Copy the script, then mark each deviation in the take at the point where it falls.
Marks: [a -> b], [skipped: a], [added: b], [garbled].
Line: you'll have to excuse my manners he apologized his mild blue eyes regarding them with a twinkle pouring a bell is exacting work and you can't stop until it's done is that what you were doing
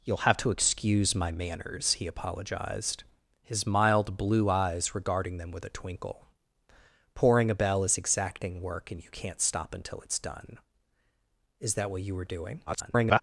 you'll have to excuse my manners he apologized his mild blue eyes regarding them with a twinkle pouring a bell is exacting work and you can't stop until it's done is that what you were doing [garbled]